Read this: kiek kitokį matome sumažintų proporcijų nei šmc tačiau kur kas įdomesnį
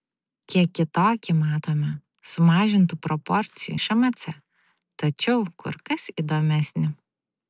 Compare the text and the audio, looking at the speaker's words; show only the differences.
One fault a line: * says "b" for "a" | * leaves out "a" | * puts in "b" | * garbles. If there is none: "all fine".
* leaves out "nei"